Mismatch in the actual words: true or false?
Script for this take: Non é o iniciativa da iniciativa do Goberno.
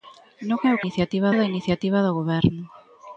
false